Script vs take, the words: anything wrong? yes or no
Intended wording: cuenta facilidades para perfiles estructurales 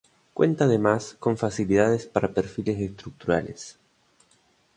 yes